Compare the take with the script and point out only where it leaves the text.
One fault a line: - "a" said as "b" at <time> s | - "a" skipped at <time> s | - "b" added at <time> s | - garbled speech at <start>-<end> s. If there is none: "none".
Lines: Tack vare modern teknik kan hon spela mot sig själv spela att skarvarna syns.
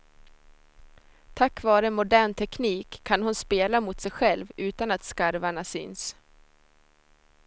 - "spela" said as "utan" at 4.6 s